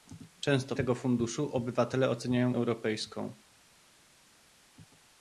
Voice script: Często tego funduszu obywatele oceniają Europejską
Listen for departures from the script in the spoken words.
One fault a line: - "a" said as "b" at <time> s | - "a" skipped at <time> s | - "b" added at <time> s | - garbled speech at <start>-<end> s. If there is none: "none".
none